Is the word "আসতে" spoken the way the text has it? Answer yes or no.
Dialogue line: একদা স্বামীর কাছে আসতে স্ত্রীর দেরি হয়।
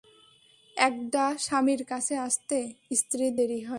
yes